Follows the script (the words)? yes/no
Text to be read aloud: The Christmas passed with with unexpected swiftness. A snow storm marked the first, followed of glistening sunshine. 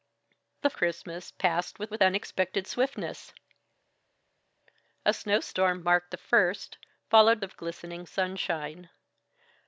yes